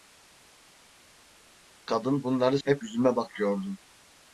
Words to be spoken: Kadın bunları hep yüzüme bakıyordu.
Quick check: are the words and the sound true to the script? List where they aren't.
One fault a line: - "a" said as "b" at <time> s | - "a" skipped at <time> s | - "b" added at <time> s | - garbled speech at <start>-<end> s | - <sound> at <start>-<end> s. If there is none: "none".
none